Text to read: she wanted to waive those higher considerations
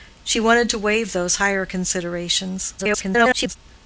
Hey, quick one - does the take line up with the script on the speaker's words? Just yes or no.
no